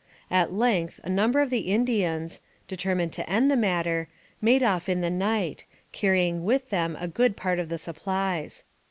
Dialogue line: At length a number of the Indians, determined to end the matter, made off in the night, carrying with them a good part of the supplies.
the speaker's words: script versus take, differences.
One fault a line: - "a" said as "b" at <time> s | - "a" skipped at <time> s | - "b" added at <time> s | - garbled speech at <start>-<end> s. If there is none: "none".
none